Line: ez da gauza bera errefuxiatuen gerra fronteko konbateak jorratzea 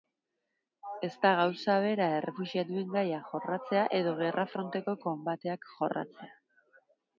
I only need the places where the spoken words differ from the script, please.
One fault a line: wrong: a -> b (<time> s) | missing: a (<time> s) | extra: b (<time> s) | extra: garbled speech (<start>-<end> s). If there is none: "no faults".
extra: gaia jorratzea edo (3.0 s)